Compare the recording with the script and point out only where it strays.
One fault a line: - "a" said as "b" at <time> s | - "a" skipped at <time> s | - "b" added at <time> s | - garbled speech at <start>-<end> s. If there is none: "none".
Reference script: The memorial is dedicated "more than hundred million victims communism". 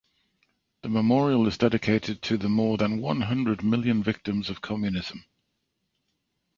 - "to the" added at 2.2 s
- "one" added at 3.0 s
- "of" added at 4.5 s